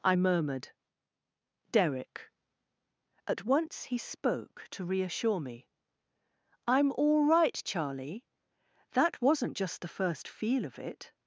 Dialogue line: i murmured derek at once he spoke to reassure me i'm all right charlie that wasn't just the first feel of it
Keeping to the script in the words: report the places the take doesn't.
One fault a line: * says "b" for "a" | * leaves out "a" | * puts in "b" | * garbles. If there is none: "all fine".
all fine